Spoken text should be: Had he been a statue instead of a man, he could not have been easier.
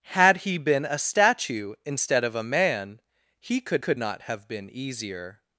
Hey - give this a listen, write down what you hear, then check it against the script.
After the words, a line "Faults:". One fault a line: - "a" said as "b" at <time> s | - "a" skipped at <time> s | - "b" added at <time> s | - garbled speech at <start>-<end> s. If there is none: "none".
Had he been a statue instead of a man, he could could not have been easier.
Faults:
- "could" added at 3.8 s